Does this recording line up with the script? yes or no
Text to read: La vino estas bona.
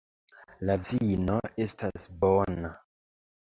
yes